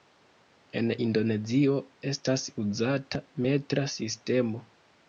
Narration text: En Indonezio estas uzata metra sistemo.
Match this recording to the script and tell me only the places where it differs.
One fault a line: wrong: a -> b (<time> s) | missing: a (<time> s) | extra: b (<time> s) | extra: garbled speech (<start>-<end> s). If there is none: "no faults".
no faults